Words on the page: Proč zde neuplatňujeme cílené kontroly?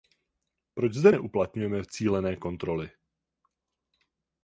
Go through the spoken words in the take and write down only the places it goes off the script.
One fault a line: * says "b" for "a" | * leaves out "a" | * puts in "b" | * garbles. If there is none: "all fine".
all fine